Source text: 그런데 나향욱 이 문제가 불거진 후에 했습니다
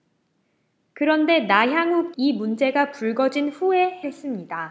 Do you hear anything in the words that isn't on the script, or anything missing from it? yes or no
no